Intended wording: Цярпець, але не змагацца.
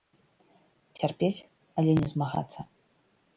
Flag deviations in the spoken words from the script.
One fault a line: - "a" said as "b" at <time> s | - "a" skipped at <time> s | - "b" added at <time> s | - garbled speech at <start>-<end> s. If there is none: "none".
none